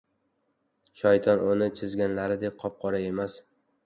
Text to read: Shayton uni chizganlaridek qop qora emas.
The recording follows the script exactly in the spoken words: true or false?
true